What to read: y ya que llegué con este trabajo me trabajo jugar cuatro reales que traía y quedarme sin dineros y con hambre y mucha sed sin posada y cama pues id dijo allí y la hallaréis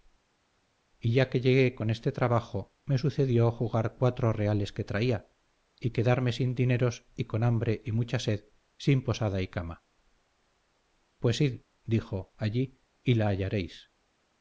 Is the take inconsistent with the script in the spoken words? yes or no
yes